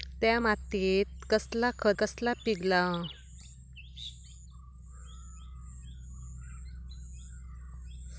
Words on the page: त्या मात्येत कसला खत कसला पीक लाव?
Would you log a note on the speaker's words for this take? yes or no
no